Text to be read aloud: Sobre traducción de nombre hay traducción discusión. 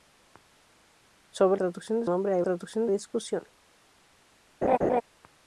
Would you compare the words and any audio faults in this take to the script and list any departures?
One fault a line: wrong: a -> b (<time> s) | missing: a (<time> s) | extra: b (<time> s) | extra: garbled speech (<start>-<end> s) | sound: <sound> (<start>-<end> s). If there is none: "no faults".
sound: laugh (4.6-5.0 s)